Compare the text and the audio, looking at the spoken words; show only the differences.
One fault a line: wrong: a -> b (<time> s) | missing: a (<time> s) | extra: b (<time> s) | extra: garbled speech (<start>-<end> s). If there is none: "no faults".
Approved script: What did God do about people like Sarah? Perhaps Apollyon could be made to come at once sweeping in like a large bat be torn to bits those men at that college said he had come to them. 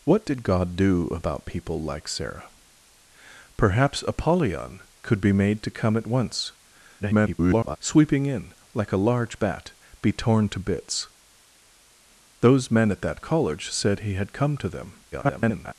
extra: garbled speech (7.0-7.8 s)
extra: garbled speech (15.1-15.7 s)